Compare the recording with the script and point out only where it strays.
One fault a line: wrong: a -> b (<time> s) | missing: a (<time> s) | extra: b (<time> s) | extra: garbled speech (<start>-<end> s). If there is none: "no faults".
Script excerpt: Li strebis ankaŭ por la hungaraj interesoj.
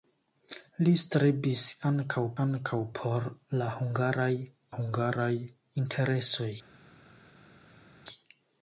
extra: ankaŭ (2.5 s)
extra: hungaraj (4.7 s)